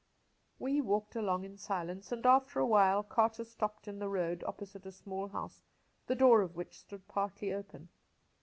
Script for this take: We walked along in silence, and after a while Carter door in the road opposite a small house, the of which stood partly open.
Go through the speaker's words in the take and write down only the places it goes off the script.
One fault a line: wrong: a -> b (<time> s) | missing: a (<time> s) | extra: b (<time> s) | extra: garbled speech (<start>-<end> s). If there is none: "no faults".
wrong: door -> stopped (3.4 s)
extra: door (6.2 s)